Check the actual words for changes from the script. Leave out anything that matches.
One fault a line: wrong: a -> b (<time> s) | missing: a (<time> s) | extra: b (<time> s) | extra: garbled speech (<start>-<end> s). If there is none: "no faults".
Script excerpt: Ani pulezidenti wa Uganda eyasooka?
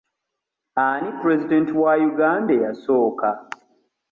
no faults